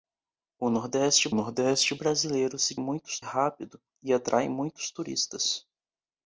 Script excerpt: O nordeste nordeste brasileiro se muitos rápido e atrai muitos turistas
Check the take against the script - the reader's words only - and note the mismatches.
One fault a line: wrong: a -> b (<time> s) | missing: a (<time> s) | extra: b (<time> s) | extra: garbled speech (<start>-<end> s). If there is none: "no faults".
no faults